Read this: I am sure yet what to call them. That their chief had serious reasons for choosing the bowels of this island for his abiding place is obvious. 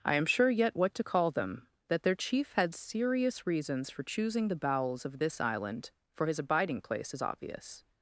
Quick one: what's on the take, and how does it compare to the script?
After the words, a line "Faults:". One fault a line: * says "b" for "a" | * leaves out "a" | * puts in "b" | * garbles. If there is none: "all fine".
I am sure yet what to call them. That their chief had serious reasons for choosing the bowels of this island for his abiding place is obvious.
Faults:
all fine